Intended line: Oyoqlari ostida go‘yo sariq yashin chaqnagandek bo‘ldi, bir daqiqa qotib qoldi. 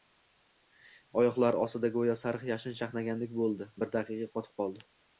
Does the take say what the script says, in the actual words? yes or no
yes